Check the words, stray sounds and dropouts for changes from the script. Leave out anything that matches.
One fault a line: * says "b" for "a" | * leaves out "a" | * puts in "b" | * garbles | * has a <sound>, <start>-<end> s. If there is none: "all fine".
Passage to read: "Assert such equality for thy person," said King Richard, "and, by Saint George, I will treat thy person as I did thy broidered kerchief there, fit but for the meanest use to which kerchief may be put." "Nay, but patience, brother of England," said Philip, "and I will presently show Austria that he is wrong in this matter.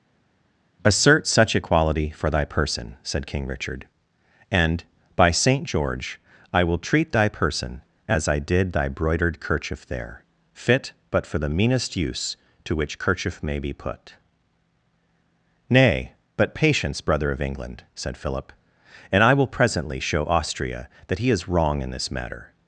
all fine